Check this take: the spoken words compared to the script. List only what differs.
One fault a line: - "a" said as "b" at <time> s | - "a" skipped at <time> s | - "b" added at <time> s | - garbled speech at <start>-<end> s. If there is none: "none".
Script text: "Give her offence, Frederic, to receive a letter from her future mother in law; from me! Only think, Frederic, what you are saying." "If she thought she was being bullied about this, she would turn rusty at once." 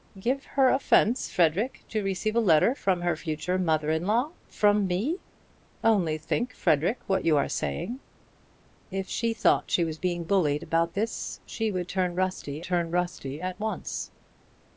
- "turn rusty" added at 12.6 s